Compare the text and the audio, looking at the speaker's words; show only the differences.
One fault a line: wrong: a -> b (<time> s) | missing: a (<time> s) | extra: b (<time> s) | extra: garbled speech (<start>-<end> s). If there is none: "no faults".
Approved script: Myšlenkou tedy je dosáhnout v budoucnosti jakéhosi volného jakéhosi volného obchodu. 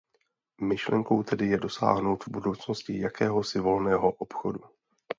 missing: jakéhosi volného (4.1 s)